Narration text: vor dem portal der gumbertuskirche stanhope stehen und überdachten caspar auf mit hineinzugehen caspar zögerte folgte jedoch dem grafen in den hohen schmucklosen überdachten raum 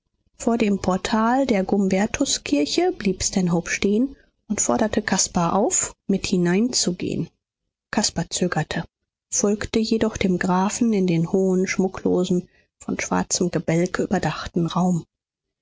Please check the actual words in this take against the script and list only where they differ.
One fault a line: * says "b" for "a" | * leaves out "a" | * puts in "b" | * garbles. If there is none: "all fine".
* puts in "blieb"
* says "forderte" for "überdachten"
* puts in "von schwarzem gebälk"